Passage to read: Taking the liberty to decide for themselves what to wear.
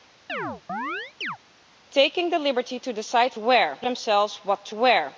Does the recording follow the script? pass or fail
fail